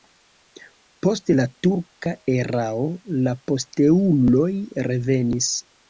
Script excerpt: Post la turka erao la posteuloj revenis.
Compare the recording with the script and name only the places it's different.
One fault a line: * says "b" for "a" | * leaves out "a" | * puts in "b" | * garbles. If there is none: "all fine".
all fine